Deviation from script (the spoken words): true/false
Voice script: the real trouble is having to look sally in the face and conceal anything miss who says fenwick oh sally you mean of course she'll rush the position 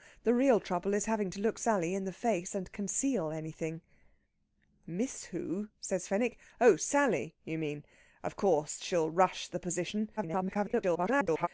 true